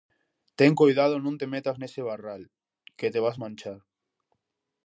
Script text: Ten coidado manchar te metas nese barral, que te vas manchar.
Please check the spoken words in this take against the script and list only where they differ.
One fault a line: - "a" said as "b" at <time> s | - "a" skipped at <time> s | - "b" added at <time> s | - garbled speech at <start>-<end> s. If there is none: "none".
- "manchar" said as "non" at 1.2 s